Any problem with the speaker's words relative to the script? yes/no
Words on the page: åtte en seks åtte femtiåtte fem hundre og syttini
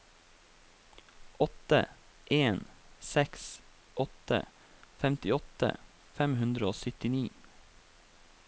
no